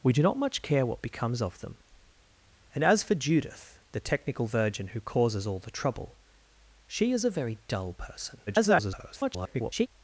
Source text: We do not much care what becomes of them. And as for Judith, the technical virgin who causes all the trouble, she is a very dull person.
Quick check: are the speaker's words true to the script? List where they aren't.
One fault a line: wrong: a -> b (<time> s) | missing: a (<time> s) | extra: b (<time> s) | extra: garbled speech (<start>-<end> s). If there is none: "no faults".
extra: garbled speech (8.5-9.9 s)